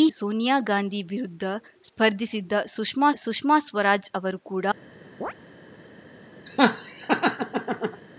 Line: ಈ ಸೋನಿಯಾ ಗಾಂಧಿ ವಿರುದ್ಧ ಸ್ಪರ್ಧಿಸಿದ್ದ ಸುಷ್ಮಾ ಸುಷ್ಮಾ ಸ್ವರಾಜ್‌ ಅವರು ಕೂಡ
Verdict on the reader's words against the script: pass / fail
pass